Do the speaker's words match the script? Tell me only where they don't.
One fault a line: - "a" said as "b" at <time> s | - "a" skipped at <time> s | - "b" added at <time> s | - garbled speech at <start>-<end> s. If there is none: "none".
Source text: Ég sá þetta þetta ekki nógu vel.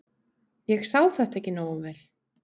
- "þetta" skipped at 1.4 s